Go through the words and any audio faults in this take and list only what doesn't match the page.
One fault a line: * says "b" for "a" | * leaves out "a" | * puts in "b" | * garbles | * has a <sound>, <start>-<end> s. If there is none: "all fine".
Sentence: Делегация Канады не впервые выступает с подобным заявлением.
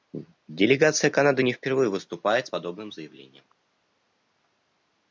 all fine